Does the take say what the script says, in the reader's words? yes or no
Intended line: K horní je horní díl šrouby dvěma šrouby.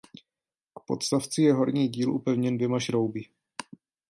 no